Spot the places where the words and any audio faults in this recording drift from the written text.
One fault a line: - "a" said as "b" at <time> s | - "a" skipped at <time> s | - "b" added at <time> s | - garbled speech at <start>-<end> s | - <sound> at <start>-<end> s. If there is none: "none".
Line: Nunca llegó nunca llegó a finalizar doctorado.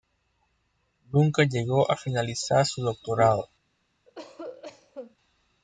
- "nunca llegó" skipped at 1.9 s
- "su" added at 2.6 s
- cough at 4.1-5.2 s